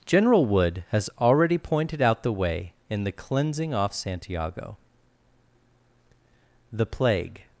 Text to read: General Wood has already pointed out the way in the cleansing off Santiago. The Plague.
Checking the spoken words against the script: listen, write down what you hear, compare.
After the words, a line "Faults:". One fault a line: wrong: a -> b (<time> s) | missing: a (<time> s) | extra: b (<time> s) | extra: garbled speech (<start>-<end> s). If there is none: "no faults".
General Wood has already pointed out the way in the cleansing off Santiago. The Plague.
Faults:
no faults